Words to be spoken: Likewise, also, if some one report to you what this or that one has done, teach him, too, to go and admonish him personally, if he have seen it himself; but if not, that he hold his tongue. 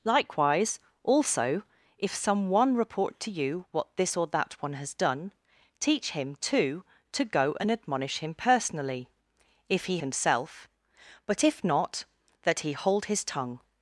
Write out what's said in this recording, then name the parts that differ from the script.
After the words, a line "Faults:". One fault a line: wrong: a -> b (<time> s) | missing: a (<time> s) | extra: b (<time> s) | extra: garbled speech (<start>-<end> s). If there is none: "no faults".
Likewise, also, if some one report to you what this or that one has done, teach him, too, to go and admonish him personally, if he himself; but if not, that he hold his tongue.
Faults:
missing: have seen it (10.0 s)